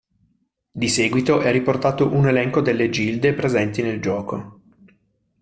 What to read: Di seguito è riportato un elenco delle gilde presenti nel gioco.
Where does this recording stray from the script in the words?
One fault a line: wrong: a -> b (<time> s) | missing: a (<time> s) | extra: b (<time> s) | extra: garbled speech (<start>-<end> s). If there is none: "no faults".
no faults